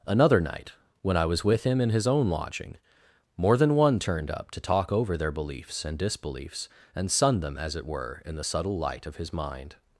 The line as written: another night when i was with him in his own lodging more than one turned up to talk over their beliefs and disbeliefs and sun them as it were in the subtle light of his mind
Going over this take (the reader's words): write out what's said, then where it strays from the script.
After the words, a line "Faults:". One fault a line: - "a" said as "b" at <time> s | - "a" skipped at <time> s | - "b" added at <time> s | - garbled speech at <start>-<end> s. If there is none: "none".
another night when i was with him in his own lodging more than one turned up to talk over their beliefs and disbeliefs and sun them as it were in the subtle light of his mind
Faults:
none